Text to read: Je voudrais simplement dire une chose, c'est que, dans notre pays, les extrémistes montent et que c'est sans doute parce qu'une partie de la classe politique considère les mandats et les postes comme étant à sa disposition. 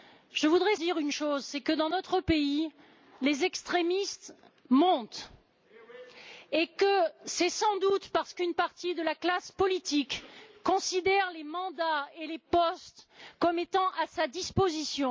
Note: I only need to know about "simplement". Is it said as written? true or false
false